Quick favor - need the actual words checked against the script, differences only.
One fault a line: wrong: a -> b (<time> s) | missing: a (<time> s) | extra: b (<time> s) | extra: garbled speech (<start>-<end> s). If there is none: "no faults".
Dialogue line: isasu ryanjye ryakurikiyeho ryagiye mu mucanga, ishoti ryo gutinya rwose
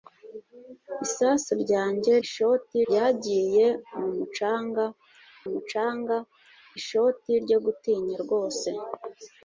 wrong: ryakurikiyeho -> ishoti (2.2 s)
extra: mucanga (5.5 s)